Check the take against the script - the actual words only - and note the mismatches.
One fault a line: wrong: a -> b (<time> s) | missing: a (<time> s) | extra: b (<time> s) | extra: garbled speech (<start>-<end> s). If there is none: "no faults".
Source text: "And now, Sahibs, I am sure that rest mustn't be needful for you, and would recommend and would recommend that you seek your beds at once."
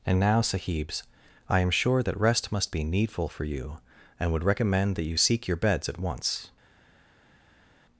wrong: mustn't -> must (2.5 s)
missing: and would recommend (5.0 s)